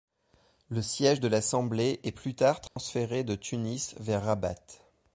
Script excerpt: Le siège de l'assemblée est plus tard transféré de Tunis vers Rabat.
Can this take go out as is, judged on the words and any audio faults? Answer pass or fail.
fail